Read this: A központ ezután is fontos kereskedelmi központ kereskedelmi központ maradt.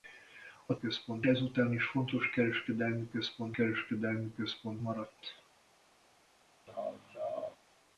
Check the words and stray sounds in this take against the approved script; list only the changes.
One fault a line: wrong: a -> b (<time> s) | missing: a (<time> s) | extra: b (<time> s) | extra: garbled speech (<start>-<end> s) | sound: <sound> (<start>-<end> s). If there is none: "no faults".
sound: laugh (6.7-7.6 s)